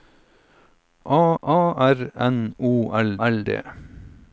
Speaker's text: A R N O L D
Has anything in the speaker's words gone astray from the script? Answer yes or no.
yes